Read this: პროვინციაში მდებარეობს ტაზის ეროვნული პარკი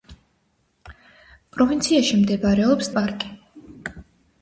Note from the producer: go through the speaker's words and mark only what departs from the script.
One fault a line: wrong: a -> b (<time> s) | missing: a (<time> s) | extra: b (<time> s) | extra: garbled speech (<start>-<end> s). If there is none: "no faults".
missing: ტაზის ეროვნული (2.9 s)